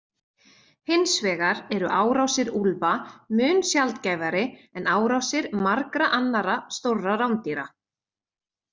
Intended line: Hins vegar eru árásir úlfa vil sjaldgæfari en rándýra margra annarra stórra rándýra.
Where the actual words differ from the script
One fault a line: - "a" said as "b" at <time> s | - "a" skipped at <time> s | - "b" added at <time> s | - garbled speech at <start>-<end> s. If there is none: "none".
- "vil" said as "mun" at 3.4 s
- "rándýra" said as "árásir" at 5.0 s